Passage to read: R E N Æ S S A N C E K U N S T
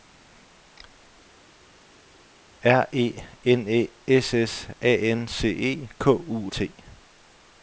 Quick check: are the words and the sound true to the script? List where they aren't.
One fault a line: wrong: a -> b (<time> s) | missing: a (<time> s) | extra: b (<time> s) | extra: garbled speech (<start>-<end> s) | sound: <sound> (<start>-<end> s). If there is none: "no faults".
missing: N S (6.5 s)